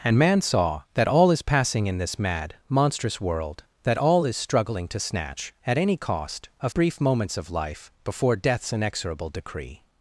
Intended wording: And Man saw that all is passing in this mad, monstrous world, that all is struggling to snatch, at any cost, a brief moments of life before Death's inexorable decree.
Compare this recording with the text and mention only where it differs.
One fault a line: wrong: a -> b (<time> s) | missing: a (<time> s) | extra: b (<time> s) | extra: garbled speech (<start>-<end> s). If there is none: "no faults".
no faults